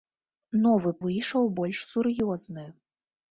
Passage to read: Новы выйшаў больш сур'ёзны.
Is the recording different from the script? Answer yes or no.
no